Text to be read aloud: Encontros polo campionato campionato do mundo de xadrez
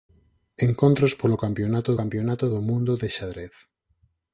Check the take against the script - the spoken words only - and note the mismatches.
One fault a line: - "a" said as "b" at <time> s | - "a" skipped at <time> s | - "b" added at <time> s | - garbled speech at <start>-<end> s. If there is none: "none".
none